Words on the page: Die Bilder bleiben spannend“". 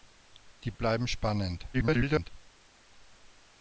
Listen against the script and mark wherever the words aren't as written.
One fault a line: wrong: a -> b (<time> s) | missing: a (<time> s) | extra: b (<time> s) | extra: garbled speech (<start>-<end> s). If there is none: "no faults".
missing: Bilder (0.7 s)
extra: garbled speech (1.7-2.3 s)